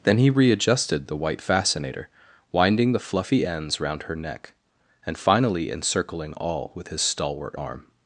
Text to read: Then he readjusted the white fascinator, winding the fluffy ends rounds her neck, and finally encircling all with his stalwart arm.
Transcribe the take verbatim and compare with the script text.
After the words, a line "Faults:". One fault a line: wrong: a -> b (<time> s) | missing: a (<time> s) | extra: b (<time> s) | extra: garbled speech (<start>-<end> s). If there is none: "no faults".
Then he readjusted the white fascinator, winding the fluffy ends round her neck, and finally encircling all with his stalwart arm.
Faults:
wrong: rounds -> round (3.8 s)